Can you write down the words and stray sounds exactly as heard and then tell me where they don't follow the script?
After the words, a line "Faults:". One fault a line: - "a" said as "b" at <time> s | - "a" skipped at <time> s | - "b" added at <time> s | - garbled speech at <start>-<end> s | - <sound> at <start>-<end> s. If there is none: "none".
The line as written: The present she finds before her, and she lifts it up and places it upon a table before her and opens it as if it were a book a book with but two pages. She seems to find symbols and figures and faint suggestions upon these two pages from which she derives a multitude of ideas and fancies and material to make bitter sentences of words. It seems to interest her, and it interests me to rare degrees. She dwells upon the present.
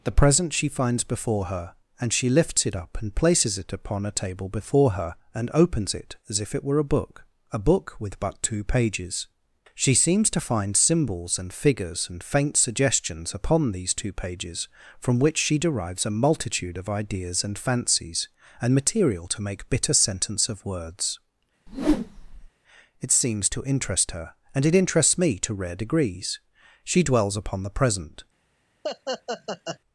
The present she finds before her, and she lifts it up and places it upon a table before her and opens it as if it were a book a book with but two pages. She seems to find symbols and figures and faint suggestions upon these two pages from which she derives a multitude of ideas and fancies and material to make bitter sentence of words. It seems to interest her, and it interests me to rare degrees. She dwells upon the present.
Faults:
- "sentences" said as "sentence" at 19.9 s
- whoosh at 21.7-22.5 s
- laugh at 28.8-29.8 s